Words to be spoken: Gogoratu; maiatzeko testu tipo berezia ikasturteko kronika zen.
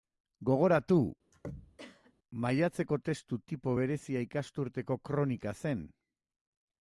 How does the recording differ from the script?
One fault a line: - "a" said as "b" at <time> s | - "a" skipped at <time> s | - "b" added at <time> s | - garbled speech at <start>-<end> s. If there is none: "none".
none